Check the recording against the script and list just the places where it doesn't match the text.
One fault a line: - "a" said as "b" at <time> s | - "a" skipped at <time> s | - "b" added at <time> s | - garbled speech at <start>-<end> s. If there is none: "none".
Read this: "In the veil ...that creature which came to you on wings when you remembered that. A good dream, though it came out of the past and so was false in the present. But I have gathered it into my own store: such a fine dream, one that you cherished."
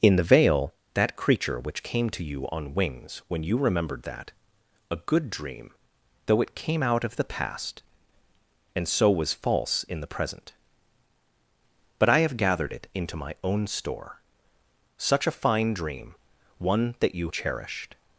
none